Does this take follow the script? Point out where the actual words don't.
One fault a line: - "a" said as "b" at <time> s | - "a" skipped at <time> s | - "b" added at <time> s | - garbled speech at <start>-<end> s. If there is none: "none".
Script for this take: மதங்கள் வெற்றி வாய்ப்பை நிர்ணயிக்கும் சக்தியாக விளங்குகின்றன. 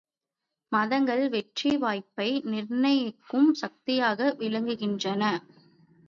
none